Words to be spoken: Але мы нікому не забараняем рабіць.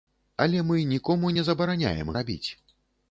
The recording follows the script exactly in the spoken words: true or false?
true